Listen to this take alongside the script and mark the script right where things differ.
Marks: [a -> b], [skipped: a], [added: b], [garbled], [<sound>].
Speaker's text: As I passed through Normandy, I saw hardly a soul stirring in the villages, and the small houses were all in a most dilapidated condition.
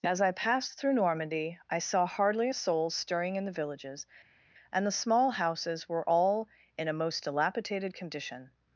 As I passed through Normandy, I saw hardly a soul stirring in the villages, and the small houses were all in a most dilapidated condition.